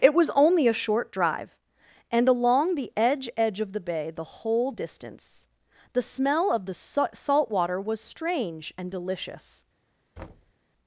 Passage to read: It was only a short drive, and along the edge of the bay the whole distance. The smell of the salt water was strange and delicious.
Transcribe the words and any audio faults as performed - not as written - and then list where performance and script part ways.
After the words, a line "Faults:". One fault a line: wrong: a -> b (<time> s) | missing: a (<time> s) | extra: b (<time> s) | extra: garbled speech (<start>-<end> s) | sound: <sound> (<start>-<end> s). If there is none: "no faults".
It was only a short drive, and along the edge edge of the bay the whole distance. The smell of the salt water was strange and delicious.
Faults:
extra: edge (3.4 s)
sound: thud (10.2-10.5 s)